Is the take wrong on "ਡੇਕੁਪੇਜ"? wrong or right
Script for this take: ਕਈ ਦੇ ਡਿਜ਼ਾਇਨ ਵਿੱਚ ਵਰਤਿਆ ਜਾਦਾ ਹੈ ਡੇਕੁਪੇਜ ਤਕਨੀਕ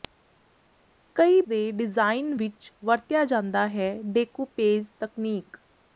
right